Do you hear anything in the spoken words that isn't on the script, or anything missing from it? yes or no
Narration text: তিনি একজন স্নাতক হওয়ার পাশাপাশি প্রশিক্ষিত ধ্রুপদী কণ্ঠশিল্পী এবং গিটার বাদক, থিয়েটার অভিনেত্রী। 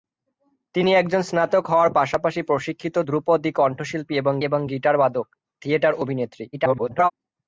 yes